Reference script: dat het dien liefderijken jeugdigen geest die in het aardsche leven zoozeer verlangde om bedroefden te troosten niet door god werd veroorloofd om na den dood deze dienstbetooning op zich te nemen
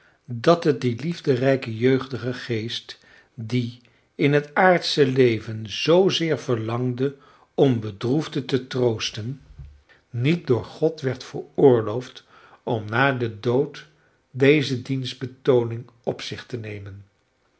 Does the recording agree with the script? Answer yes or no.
yes